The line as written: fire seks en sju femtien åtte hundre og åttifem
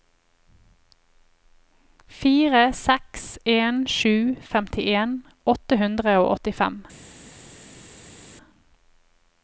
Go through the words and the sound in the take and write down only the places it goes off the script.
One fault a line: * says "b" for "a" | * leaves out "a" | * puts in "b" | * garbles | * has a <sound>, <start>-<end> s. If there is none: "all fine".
all fine